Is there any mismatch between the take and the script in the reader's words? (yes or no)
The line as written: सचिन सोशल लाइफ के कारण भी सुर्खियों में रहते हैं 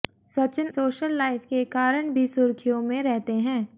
no